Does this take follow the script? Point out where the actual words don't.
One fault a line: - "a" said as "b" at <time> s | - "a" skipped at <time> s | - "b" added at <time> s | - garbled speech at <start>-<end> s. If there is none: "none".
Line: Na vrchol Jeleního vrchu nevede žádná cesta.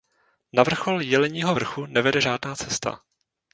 none